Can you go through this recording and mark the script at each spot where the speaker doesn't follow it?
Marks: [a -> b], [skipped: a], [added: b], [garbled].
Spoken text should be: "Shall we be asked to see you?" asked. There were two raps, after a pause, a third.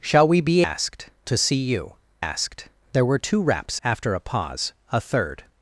"Shall we be asked to see you?" asked. There were two raps, after a pause, a third.